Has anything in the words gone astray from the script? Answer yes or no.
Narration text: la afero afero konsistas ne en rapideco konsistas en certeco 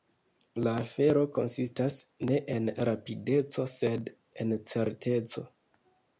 yes